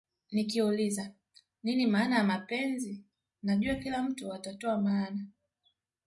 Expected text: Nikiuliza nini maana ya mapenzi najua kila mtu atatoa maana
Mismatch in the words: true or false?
false